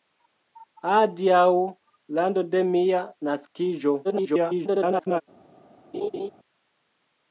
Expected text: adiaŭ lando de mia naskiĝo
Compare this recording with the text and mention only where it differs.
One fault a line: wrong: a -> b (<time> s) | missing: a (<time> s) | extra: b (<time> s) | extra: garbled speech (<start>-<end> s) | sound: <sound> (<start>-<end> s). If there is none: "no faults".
extra: garbled speech (4.0-5.2 s)
sound: laugh (5.9-6.3 s)